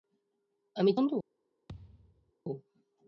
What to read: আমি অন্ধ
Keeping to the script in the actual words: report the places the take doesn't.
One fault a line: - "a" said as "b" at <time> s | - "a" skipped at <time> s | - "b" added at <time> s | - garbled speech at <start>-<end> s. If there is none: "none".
none